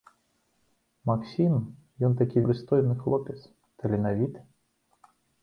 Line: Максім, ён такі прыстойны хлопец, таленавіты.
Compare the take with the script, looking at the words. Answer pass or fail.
pass